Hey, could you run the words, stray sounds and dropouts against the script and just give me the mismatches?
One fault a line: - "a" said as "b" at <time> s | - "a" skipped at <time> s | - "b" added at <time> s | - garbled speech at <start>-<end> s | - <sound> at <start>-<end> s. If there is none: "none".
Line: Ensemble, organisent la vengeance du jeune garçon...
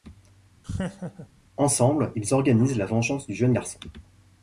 - laugh at 0.6-1.3 s
- "ils" added at 2.2 s